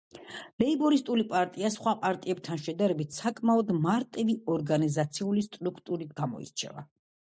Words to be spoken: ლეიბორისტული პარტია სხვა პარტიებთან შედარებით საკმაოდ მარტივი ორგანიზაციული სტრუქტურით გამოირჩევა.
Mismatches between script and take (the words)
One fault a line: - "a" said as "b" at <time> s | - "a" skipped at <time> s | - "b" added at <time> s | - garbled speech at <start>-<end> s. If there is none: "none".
none